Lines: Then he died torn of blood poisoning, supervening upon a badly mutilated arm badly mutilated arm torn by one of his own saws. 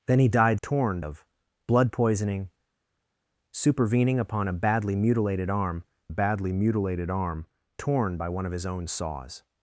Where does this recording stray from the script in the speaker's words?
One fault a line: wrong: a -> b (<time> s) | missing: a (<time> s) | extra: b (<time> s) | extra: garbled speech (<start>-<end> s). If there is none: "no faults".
no faults